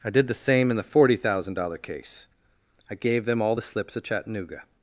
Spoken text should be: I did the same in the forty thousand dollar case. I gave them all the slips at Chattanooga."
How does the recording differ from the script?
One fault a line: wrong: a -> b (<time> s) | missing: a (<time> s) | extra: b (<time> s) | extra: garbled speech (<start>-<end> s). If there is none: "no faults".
no faults